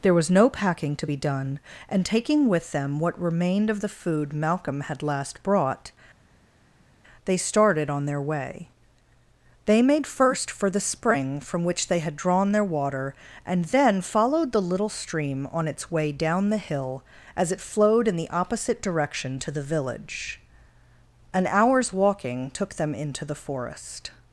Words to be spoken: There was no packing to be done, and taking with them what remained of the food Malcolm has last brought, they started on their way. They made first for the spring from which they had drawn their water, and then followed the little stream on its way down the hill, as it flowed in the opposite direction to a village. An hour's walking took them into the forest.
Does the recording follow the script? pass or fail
fail